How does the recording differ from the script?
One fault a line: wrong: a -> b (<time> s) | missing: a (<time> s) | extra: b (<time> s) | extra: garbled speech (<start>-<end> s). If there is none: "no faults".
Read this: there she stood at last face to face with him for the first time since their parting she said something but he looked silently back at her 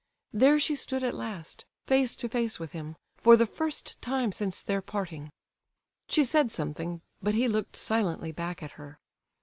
no faults